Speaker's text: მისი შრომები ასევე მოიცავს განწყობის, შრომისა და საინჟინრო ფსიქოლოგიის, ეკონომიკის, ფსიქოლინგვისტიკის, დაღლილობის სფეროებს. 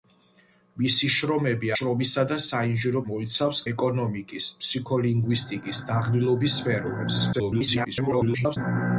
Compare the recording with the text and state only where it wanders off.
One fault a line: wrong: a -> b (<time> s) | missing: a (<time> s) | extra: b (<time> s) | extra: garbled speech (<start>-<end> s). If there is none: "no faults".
missing: ასევე მოიცავს განწყობის (1.7 s)
wrong: ფსიქოლოგიის -> მოიცავს (3.1 s)
extra: garbled speech (7.3-8.6 s)